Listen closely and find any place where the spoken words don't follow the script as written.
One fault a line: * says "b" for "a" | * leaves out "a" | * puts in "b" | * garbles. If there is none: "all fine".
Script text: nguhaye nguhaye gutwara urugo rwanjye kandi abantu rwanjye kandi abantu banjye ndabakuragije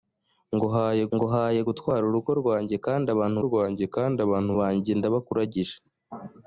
all fine